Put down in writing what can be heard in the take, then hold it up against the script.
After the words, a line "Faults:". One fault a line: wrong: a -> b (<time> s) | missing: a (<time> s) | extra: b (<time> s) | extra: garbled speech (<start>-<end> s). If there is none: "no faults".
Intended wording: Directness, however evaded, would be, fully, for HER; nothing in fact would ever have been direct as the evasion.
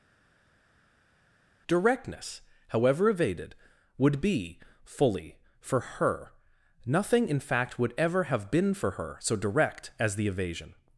Directness, however evaded, would be, fully, for HER; nothing in fact would ever have been for her so direct as the evasion.
Faults:
extra: for her so (8.8 s)